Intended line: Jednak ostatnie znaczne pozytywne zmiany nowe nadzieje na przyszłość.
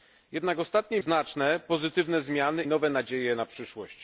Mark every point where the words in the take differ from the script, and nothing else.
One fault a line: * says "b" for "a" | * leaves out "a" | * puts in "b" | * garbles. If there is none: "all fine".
all fine